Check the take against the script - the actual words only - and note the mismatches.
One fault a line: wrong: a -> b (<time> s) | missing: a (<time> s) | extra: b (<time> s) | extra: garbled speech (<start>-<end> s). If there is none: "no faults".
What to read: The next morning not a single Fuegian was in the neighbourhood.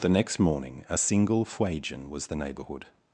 missing: not (0.8 s)
missing: in (2.3 s)